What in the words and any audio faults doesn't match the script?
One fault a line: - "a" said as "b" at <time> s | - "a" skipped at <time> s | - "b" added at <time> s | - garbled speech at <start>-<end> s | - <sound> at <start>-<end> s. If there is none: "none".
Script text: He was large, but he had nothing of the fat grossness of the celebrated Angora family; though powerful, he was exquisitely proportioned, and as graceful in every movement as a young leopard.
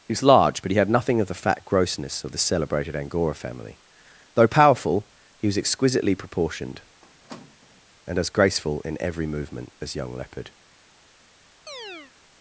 - squeak at 7.0-7.8 s
- "a" skipped at 10.0 s
- chirp at 11.7-12.1 s